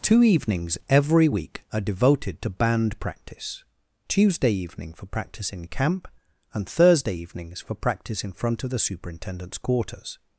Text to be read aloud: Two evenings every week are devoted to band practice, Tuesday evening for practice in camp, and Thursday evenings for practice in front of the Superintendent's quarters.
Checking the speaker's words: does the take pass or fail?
pass